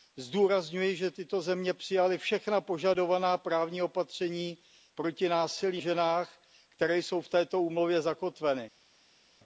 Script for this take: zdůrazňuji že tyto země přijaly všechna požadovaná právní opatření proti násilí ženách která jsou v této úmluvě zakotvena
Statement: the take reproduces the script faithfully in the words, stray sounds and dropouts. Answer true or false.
true